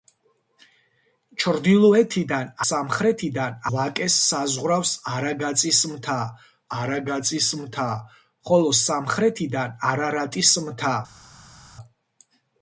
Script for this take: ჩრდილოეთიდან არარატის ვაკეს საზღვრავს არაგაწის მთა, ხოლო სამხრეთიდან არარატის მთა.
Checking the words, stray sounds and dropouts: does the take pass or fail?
fail